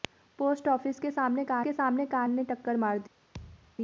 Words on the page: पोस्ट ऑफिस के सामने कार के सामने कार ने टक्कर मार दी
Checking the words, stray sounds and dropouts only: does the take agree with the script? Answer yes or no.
no